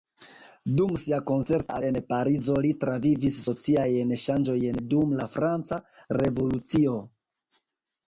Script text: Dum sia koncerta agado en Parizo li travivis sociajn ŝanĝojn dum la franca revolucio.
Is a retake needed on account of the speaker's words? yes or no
yes